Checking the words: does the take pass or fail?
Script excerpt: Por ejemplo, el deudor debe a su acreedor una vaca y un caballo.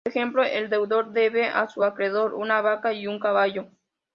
pass